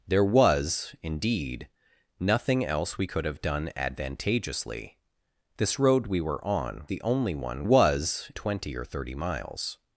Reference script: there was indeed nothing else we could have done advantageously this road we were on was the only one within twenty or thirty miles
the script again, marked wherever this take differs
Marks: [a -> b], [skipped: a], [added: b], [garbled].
there was indeed nothing else we could have done advantageously this road we were on [skipped: was] the only one [within -> was] twenty or thirty miles